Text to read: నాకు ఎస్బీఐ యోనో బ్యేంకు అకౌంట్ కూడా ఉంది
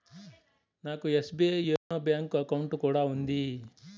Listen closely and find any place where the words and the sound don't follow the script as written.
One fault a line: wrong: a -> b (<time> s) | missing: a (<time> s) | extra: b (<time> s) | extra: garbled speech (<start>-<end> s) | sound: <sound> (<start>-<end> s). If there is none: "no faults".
sound: dropout (1.8-1.9 s)